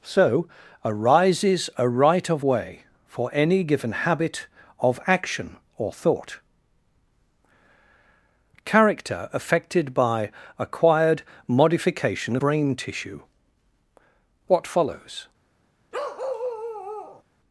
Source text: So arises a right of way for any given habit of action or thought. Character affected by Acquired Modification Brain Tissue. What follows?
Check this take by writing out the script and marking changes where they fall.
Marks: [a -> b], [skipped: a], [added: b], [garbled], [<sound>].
So arises a right of way for any given habit of action or thought. Character affected by Acquired Modification Brain Tissue. What follows? [bark]